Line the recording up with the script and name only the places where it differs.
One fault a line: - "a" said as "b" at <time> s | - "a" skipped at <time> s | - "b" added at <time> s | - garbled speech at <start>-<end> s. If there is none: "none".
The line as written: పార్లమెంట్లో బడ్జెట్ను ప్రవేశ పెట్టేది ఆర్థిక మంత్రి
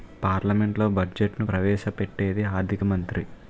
none